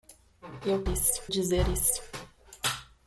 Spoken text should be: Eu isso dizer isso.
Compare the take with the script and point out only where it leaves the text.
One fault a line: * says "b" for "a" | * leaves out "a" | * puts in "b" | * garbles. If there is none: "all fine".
all fine